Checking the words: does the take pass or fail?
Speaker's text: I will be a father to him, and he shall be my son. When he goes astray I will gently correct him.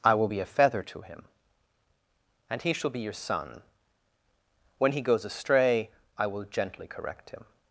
fail